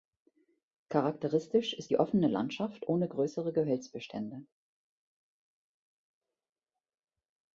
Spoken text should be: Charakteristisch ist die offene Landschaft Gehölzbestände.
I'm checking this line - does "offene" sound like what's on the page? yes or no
yes